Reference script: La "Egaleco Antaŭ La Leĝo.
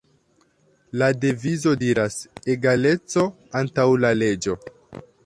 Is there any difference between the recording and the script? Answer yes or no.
yes